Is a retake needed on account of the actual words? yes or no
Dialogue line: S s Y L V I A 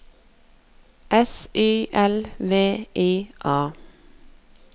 yes